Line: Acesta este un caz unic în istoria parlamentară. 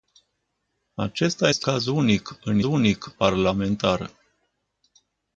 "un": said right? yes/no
no